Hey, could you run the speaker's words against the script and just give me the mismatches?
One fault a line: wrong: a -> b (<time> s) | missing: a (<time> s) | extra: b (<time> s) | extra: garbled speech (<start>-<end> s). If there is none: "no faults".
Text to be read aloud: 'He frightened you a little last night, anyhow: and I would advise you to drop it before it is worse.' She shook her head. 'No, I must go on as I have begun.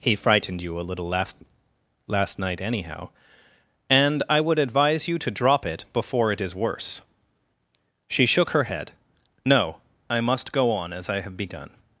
extra: last (2.1 s)